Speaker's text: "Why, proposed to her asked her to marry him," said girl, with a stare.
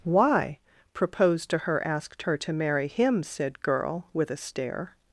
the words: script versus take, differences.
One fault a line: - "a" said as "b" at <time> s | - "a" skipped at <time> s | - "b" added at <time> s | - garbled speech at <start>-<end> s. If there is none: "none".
none